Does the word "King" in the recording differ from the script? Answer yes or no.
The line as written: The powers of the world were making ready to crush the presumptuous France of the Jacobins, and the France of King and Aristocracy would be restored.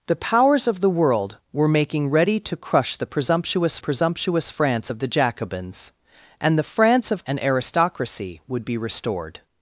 yes